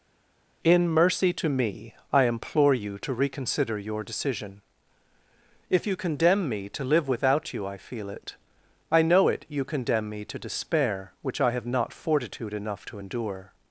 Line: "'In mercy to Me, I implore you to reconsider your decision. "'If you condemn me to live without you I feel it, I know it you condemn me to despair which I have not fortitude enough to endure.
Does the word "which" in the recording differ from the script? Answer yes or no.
no